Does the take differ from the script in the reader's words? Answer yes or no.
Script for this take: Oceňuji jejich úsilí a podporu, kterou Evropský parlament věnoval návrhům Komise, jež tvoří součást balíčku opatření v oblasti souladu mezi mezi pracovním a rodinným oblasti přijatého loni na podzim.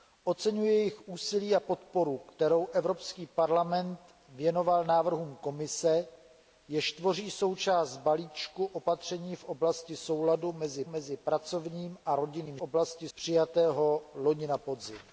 no